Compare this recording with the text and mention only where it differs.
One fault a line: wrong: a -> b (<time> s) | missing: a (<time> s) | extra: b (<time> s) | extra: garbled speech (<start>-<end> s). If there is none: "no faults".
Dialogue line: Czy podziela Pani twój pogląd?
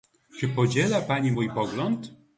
wrong: twój -> mój (1.3 s)